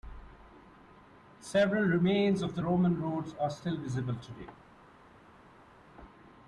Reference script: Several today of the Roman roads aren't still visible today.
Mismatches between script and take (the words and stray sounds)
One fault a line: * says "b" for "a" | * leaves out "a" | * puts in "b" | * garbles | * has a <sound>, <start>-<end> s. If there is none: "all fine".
* says "remains" for "today"
* says "are" for "aren't"